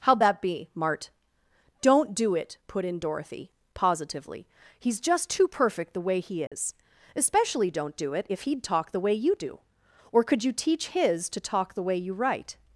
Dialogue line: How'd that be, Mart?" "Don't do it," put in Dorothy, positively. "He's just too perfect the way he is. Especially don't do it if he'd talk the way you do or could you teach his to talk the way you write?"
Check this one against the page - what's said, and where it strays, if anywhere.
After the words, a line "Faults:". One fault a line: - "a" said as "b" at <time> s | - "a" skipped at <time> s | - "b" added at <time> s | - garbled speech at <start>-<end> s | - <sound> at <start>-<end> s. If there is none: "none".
How'd that be, Mart?" "Don't do it," put in Dorothy, positively. "He's just too perfect the way he is. Especially don't do it if he'd talk the way you do or could you teach his to talk the way you write?"
Faults:
- dropout at 6.5-6.5 s